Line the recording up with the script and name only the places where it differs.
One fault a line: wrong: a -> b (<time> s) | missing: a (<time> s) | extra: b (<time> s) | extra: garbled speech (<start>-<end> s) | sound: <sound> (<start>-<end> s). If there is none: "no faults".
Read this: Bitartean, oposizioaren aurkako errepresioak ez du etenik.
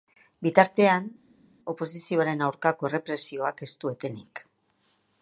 no faults